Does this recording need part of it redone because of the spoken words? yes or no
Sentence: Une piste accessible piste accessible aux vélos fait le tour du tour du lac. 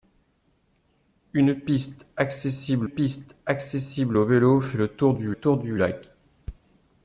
no